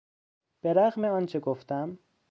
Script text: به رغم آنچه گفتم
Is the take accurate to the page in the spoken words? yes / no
yes